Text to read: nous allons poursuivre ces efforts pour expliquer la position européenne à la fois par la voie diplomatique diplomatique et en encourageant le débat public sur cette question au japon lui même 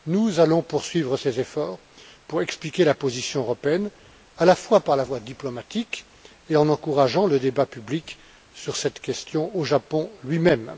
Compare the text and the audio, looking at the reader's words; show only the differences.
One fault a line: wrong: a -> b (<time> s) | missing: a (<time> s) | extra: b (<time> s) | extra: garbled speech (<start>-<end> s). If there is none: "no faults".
missing: diplomatique (6.0 s)